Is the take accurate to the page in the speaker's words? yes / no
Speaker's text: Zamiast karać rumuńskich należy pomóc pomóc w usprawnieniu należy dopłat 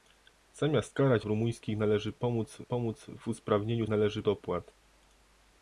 yes